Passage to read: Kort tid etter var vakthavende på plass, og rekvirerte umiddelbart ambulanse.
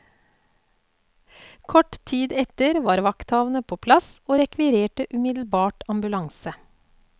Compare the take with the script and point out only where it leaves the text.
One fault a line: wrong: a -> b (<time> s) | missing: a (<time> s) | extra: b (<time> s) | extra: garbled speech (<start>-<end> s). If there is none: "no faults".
no faults